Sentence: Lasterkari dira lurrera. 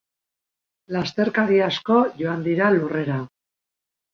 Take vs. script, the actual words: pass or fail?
fail